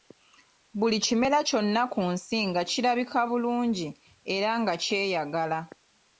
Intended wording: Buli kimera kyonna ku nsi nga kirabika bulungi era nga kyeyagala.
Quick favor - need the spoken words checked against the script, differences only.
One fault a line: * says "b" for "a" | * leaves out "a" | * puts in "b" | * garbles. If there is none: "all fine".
all fine